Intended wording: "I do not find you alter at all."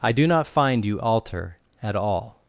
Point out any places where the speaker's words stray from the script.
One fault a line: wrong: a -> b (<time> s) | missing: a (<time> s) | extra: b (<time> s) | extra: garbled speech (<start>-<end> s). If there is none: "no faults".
no faults